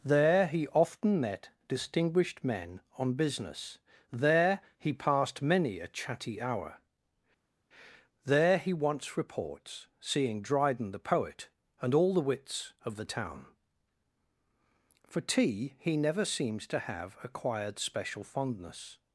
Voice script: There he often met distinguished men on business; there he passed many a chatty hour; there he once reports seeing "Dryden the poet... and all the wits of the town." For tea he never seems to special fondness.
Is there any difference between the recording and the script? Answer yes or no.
yes